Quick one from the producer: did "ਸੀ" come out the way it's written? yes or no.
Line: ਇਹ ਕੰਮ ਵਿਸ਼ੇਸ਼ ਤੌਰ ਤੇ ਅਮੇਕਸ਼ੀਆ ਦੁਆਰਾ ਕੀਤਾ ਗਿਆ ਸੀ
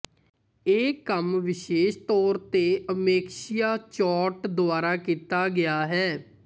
no